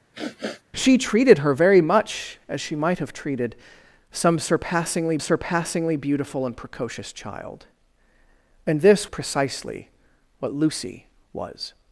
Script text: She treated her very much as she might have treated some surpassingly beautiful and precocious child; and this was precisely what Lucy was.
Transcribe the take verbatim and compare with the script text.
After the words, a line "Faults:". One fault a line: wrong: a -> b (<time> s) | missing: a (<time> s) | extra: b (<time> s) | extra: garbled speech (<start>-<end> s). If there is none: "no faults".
She treated her very much as she might have treated some surpassingly surpassingly beautiful and precocious child; and this precisely what Lucy was.
Faults:
extra: surpassingly (5.2 s)
missing: was (9.1 s)